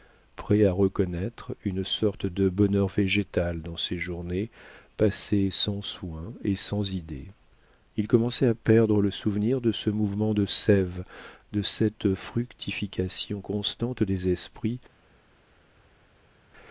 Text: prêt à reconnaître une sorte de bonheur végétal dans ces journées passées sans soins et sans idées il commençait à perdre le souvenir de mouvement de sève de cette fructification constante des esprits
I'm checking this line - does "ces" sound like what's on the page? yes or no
yes